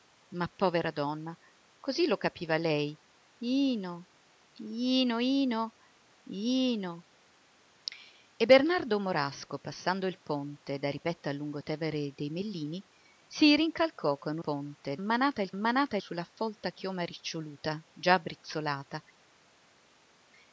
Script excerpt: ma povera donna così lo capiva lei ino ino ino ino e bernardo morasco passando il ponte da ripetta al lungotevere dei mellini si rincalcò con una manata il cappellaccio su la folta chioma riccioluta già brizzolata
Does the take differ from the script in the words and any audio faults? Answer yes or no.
yes